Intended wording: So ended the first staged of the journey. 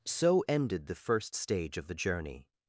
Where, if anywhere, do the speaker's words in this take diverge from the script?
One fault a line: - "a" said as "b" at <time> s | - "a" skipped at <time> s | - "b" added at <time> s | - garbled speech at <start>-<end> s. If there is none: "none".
- "staged" said as "stage" at 1.3 s